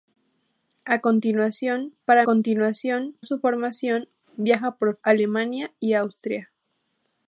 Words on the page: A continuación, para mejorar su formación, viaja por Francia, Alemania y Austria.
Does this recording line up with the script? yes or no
no